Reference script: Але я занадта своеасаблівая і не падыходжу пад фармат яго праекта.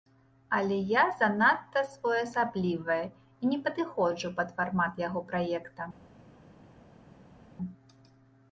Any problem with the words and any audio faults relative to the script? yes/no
no